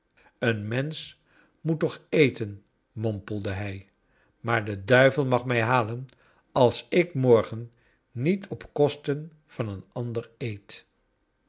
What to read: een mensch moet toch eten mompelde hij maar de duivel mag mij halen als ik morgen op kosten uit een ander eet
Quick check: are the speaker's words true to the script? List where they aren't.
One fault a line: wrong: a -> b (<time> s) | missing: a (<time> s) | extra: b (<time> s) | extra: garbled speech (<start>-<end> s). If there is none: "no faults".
extra: niet (8.1 s)
wrong: uit -> van (9.4 s)